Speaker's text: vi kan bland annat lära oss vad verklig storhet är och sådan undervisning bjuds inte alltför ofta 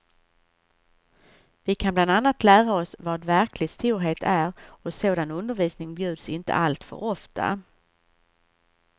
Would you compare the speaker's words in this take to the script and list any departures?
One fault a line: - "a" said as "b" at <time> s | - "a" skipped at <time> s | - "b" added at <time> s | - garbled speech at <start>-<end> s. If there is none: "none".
none